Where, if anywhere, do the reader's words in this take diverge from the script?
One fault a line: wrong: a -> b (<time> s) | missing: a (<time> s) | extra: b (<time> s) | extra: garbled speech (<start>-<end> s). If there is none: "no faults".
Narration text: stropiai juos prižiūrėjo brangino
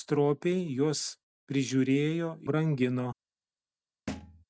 no faults